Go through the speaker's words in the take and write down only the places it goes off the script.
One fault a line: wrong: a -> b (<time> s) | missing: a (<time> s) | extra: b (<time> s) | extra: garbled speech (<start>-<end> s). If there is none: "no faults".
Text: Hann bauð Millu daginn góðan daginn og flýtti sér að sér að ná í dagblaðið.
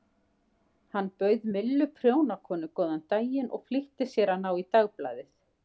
wrong: daginn -> prjónakonu (2.0 s)
missing: sér að (4.5 s)